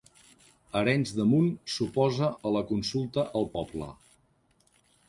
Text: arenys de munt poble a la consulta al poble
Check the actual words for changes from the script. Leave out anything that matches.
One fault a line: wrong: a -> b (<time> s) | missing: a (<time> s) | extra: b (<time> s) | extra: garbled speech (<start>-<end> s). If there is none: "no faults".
wrong: poble -> s'oposa (1.8 s)